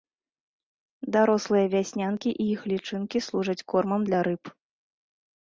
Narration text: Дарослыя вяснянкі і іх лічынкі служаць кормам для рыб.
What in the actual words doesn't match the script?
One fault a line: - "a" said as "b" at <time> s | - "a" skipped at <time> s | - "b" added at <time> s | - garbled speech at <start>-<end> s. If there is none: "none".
none